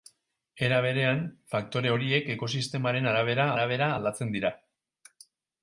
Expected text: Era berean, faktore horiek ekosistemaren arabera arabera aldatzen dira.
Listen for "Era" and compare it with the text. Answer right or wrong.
right